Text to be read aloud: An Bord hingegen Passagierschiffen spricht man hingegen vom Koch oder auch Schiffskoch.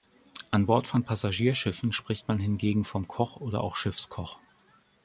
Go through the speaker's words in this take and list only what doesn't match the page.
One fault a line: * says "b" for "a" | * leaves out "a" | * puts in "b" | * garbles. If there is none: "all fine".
* says "von" for "hingegen"